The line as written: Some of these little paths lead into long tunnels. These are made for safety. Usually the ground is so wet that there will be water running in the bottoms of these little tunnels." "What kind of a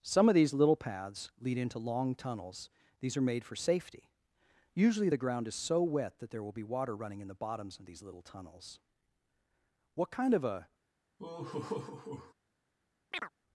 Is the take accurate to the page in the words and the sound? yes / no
no